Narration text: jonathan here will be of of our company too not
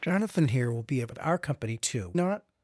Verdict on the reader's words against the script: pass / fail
pass